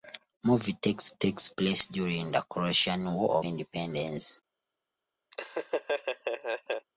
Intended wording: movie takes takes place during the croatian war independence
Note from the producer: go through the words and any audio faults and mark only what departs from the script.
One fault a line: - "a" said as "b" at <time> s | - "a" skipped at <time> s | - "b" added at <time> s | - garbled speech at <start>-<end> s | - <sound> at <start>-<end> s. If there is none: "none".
- laugh at 5.3-6.9 s